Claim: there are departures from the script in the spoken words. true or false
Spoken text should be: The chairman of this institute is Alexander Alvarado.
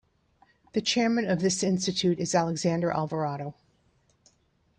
false